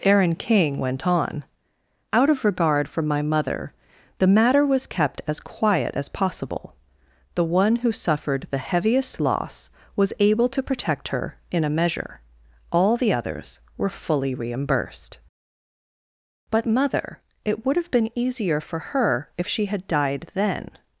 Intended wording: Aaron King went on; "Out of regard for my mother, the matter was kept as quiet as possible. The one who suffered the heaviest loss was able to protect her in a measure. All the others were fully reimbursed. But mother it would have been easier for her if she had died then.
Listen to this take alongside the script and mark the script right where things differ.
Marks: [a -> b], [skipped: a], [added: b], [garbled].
Aaron King went on; "Out of regard for my mother, the matter was kept as quiet as possible. The one who suffered the heaviest loss was able to protect her in a measure. All the others were fully reimbursed. But mother it would have been easier for her if she had died then.